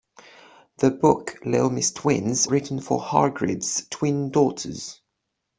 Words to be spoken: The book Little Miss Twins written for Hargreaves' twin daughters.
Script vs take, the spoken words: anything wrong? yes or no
no